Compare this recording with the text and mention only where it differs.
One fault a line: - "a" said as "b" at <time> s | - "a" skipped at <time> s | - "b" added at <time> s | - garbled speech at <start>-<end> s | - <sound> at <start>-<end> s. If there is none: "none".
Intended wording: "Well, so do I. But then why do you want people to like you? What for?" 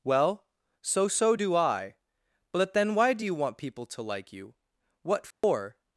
- "so" added at 1.1 s
- dropout at 5.3-5.4 s